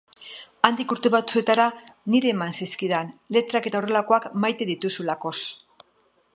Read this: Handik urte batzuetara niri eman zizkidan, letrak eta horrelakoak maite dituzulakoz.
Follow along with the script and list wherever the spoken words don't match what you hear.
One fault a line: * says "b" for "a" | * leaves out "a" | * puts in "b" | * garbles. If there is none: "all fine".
all fine